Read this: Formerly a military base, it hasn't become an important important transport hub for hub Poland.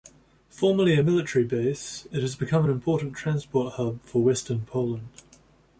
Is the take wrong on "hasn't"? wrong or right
wrong